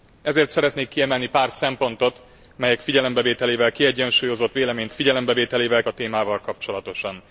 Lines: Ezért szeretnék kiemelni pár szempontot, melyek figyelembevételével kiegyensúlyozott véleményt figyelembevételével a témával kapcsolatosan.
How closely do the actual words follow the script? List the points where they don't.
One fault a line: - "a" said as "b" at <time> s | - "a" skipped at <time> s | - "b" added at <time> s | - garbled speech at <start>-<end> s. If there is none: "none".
none